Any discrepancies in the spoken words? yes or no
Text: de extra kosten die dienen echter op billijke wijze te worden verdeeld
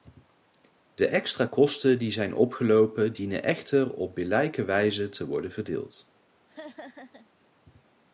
yes